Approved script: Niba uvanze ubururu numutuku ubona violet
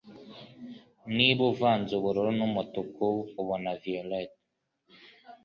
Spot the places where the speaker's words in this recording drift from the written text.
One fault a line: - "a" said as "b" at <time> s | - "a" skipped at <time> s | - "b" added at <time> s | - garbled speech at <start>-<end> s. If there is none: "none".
none